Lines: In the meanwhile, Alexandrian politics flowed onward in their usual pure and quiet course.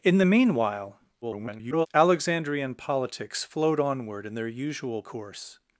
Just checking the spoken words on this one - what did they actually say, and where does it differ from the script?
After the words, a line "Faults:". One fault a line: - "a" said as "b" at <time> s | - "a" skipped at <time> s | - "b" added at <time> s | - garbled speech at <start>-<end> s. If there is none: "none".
In the meanwhile, [garbled] Alexandrian politics flowed onward in their usual course.
Faults:
- garbled speech at 1.2-1.9 s
- "pure and quiet" skipped at 5.0 s